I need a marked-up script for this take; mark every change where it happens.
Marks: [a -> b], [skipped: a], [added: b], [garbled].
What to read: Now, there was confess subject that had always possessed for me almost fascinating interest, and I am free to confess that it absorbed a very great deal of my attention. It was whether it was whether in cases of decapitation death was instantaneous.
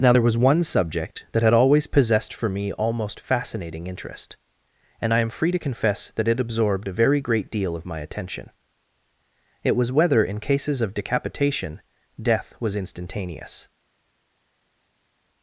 Now, there was [confess -> one] subject that had always possessed for me almost fascinating interest, and I am free to confess that it absorbed a very great deal of my attention. It was whether [skipped: it was whether] in cases of decapitation death was instantaneous.